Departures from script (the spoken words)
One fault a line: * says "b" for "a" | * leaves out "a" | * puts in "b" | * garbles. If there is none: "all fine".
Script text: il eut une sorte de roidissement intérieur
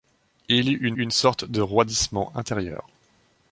* puts in "une"